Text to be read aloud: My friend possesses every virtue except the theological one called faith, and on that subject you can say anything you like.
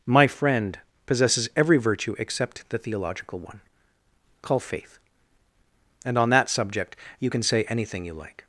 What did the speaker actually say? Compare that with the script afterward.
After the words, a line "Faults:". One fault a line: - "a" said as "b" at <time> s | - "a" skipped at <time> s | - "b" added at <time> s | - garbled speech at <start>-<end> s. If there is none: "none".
My friend possesses every virtue except the theological one call faith, and on that subject you can say anything you like.
Faults:
- "called" said as "call" at 4.4 s